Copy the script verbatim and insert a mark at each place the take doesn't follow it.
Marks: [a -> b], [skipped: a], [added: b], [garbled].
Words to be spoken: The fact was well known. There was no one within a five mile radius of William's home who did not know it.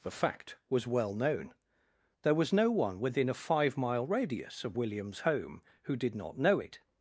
The fact was well known. There was no one within a five mile radius of William's home who did not know it.